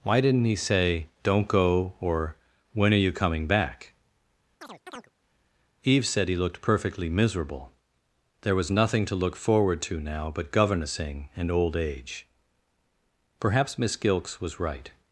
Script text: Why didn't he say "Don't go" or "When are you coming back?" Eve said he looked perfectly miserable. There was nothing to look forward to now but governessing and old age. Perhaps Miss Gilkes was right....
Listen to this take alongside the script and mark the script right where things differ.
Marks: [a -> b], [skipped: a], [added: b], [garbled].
Why didn't he say "Don't go" or "When are you coming back?" Eve said he looked perfectly miserable. There was nothing to look forward to now but governessing and old age. Perhaps Miss Gilkes was right....